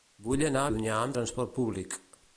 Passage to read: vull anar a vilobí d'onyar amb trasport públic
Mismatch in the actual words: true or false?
true